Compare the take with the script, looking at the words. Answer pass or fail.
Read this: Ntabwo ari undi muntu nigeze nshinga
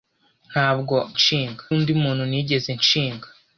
fail